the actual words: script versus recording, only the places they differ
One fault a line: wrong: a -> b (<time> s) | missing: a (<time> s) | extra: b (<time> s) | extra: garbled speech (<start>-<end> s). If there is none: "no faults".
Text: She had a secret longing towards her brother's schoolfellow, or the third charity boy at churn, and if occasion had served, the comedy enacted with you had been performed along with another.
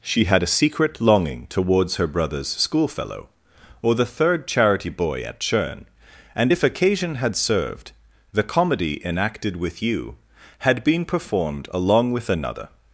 no faults